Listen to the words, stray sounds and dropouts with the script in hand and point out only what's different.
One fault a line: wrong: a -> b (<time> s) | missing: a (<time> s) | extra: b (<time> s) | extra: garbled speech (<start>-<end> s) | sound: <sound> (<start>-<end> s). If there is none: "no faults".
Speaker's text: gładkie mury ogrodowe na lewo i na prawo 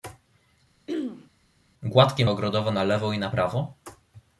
sound: throat clearing (0.9-1.3 s)
missing: mury (2.2 s)